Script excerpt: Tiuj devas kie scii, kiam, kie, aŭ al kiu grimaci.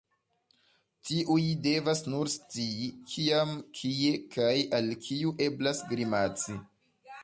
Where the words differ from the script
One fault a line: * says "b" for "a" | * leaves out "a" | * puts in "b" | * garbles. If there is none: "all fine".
* says "nur" for "kie"
* says "kaj" for "aŭ"
* puts in "eblas"